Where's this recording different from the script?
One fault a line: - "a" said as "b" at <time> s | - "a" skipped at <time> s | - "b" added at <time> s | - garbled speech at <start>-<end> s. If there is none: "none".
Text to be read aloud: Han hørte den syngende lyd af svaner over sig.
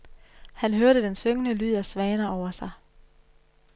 none